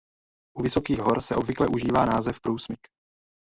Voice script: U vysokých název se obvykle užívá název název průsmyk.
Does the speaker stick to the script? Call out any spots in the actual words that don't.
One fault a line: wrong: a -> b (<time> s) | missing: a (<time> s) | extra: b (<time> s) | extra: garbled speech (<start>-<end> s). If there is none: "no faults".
wrong: název -> hor (1.0 s)
missing: název (2.4 s)